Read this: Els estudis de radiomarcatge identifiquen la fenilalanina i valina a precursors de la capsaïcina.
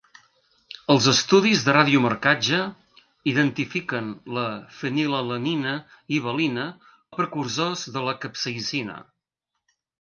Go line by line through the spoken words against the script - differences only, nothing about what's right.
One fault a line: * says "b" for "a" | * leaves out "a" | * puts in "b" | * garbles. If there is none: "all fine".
all fine